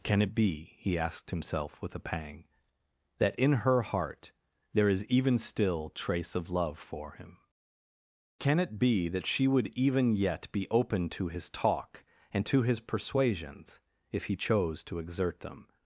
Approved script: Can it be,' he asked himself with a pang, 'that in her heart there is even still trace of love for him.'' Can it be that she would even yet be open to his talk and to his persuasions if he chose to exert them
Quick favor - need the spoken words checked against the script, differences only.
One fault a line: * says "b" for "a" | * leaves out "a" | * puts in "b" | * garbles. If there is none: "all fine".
all fine